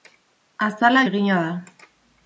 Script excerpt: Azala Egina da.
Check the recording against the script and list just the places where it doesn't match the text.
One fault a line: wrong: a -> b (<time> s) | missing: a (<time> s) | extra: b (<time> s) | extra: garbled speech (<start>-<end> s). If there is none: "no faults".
no faults